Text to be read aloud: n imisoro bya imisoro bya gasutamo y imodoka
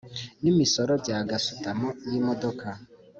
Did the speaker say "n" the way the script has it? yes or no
yes